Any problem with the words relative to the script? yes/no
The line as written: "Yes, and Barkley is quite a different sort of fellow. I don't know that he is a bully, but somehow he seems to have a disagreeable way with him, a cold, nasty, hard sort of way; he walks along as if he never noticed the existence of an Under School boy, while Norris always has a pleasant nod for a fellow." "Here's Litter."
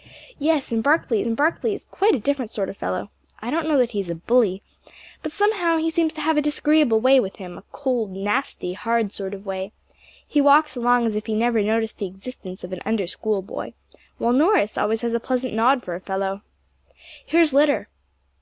yes